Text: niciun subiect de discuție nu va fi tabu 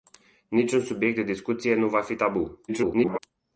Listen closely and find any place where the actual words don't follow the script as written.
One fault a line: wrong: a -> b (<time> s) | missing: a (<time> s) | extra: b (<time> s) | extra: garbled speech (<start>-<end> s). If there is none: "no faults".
extra: garbled speech (2.7-3.2 s)